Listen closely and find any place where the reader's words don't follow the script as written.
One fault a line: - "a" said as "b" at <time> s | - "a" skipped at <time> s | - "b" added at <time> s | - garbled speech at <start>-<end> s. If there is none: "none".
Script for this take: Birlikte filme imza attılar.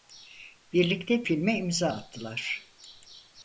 none